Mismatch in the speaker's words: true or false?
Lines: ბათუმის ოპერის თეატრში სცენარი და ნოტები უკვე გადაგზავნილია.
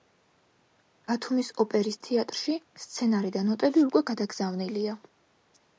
false